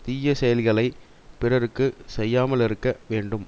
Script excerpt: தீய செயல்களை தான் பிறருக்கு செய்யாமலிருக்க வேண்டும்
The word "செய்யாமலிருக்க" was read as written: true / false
true